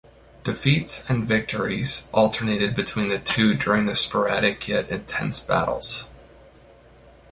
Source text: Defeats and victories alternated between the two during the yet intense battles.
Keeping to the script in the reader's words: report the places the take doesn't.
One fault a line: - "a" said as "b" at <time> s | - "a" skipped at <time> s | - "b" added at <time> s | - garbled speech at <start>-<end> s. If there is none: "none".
- "sporadic" added at 4.0 s